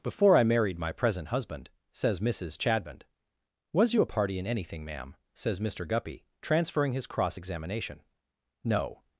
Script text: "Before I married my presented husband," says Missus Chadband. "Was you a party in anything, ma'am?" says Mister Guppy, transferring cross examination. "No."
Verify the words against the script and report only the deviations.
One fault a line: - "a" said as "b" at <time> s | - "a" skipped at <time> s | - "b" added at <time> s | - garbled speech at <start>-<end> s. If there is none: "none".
- "presented" said as "present" at 0.9 s
- "his" added at 6.9 s